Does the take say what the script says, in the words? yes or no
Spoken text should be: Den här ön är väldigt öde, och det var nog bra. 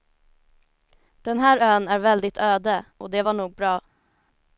yes